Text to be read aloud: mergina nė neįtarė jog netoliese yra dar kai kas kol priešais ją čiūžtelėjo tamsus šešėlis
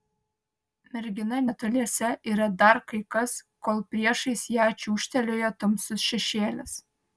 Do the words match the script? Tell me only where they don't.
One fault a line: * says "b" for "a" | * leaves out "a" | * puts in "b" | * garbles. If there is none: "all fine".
* leaves out "nė neįtarė jog"